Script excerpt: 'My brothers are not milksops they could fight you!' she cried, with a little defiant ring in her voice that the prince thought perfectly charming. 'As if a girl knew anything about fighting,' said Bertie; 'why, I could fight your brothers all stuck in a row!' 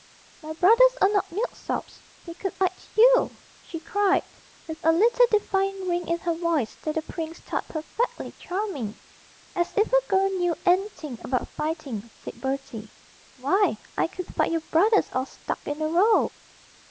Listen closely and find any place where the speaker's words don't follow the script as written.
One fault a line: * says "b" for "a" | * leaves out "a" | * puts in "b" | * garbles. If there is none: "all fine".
all fine